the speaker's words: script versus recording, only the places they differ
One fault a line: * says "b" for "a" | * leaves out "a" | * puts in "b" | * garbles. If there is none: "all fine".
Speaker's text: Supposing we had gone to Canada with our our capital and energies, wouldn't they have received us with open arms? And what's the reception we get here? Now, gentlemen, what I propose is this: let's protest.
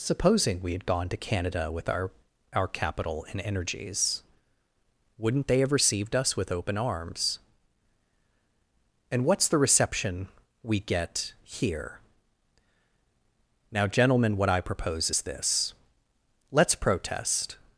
all fine